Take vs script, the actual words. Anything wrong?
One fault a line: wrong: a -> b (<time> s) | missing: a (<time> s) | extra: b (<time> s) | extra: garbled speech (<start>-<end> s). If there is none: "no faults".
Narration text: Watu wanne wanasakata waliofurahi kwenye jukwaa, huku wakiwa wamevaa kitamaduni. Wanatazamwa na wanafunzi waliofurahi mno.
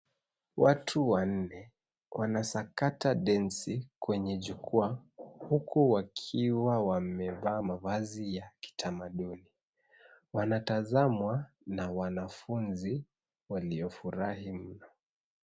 wrong: waliofurahi -> densi (3.1 s)
extra: mavazi ya (7.6 s)